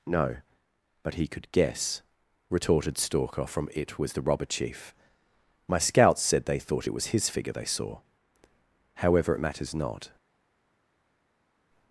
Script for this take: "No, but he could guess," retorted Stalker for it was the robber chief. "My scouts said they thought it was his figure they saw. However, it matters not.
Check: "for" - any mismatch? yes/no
yes